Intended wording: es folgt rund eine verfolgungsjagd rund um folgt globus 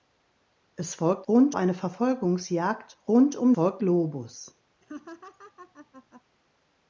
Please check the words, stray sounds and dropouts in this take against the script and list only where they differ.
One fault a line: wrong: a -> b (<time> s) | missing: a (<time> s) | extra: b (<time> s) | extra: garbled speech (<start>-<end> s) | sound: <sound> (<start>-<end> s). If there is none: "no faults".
sound: laugh (4.8-6.2 s)